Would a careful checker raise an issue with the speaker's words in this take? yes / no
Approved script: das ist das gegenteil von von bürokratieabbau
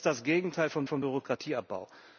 no